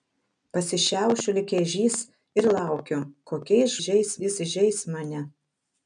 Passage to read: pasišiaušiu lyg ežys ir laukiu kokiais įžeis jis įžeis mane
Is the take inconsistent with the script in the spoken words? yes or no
no